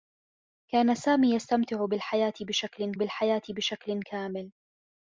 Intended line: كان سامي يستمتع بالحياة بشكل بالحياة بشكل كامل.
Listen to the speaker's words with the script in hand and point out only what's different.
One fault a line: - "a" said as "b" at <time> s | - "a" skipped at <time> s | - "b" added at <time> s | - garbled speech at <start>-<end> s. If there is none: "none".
none